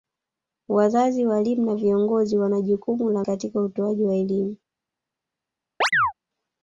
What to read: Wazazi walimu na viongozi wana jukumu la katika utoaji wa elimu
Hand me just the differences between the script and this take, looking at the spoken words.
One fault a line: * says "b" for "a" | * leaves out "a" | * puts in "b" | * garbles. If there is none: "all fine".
all fine